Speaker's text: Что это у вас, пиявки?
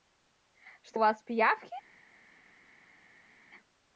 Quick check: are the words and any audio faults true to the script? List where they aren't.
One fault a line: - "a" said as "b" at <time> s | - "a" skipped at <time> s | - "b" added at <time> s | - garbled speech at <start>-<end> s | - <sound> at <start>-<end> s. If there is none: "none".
- "это" skipped at 1.0 s